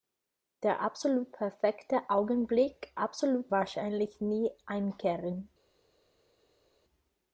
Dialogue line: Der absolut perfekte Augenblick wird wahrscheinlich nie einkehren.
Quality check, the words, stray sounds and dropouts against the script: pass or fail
fail